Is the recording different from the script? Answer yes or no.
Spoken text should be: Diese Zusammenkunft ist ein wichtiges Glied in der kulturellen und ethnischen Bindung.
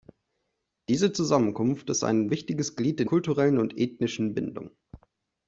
yes